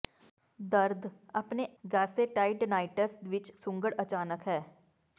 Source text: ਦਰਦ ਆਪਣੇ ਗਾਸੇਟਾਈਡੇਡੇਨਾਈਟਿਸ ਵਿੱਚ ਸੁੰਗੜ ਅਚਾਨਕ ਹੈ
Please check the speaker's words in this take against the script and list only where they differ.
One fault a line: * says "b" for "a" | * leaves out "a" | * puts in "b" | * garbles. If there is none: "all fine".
all fine